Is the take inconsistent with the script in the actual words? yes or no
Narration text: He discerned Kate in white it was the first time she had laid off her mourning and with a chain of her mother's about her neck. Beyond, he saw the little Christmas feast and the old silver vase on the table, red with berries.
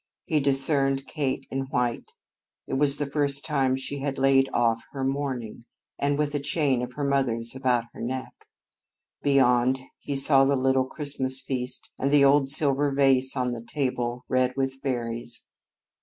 no